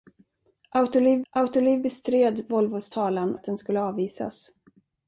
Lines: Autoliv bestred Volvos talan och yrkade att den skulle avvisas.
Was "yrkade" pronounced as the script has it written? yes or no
no